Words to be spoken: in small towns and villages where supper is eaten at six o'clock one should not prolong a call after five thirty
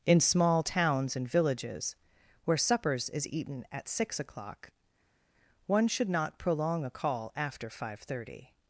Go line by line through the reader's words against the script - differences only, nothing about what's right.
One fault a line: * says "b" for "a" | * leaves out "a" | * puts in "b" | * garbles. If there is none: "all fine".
* says "suppers" for "supper"